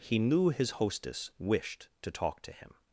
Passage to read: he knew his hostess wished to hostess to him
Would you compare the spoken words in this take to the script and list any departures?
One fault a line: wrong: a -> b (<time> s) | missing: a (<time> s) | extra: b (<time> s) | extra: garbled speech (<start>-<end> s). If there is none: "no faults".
wrong: hostess -> talk (2.1 s)